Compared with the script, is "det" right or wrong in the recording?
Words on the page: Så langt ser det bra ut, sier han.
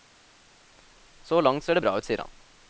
right